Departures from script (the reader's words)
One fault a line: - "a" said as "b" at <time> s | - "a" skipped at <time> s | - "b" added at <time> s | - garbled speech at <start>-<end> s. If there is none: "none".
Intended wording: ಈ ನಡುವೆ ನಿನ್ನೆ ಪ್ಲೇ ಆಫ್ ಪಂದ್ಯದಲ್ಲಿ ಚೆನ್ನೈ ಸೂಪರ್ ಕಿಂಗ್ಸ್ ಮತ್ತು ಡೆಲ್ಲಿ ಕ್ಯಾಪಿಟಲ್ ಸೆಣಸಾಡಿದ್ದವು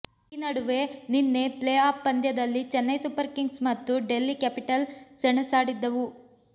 none